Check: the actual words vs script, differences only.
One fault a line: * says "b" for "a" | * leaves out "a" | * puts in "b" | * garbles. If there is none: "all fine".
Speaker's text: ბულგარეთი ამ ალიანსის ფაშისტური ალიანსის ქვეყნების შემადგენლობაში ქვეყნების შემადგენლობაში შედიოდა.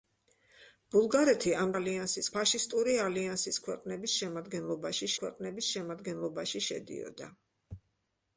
all fine